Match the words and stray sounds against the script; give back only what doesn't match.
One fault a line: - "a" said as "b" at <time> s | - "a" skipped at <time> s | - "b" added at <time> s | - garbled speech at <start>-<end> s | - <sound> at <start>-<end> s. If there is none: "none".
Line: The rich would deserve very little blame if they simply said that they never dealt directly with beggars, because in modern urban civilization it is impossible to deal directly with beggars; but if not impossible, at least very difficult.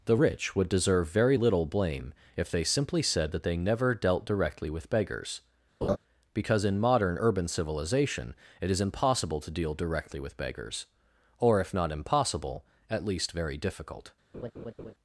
- laugh at 5.8-6.0 s
- "but" said as "or" at 11.4 s
- laugh at 14.3-14.9 s